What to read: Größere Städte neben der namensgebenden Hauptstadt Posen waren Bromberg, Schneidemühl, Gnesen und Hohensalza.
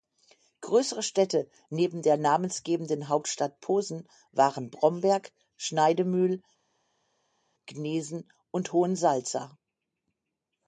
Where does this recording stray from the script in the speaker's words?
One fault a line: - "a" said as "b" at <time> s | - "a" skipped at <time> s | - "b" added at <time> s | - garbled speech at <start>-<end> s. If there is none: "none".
none